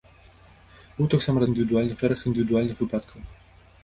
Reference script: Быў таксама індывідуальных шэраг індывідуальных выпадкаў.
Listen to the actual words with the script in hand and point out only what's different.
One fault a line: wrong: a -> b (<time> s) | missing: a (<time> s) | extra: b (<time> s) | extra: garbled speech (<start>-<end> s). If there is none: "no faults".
no faults